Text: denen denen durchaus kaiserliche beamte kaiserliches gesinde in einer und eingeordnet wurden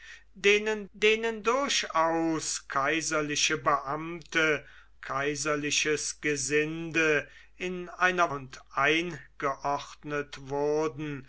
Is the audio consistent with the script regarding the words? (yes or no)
yes